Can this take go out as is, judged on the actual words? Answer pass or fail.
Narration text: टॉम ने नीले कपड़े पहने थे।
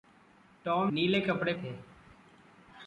fail